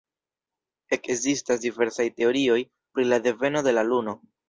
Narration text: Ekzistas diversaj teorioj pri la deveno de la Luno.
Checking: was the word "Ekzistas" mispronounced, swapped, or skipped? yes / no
no